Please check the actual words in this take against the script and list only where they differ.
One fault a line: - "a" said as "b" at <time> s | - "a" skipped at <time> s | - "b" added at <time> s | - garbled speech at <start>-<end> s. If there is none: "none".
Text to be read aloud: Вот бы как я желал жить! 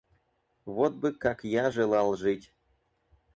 none